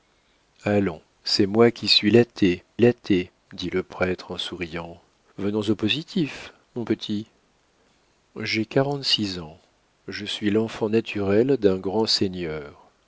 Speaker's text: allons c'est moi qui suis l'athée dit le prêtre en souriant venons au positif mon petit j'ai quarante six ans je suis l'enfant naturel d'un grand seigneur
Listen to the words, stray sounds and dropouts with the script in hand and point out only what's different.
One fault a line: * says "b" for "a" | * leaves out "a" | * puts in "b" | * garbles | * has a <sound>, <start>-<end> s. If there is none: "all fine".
* puts in "l'athée"